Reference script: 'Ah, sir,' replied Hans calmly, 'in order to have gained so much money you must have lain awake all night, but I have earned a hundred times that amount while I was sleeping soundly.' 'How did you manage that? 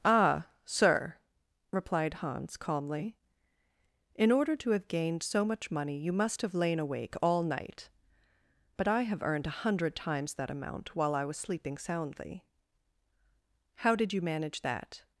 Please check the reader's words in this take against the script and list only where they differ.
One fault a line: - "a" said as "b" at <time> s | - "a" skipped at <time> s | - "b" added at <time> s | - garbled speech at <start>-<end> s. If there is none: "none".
none